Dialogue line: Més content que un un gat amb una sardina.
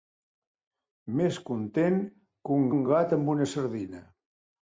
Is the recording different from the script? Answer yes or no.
no